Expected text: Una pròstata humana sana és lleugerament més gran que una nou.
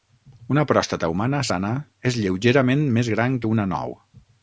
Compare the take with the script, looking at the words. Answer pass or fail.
pass